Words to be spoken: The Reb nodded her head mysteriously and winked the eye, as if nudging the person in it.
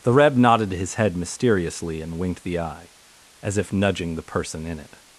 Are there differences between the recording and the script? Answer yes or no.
yes